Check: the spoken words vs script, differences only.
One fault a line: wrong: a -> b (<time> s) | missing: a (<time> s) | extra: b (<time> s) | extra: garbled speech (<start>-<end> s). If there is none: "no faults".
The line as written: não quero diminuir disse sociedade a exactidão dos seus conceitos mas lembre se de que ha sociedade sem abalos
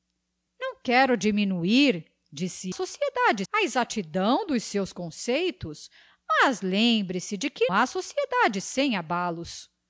no faults